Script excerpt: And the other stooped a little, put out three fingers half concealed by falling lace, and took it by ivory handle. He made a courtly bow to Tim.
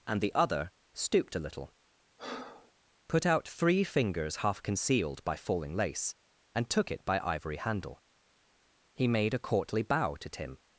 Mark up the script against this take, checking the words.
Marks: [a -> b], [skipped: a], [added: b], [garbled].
And the other stooped a little, put out three fingers half concealed by falling lace, and took it by ivory handle. He made a courtly bow to Tim.